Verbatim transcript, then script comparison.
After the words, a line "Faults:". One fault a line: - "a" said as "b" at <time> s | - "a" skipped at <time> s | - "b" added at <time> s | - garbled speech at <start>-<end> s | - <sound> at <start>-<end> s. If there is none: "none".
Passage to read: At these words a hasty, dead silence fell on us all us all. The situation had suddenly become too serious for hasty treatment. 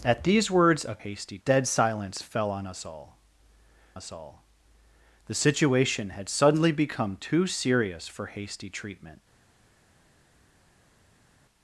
At these words a hasty, dead silence fell on us all us all. The situation had suddenly become too serious for hasty treatment.
Faults:
none